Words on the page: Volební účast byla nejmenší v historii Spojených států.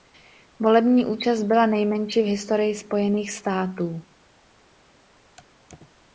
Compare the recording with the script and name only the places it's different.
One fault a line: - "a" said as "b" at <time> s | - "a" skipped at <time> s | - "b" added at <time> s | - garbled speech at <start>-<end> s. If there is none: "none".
none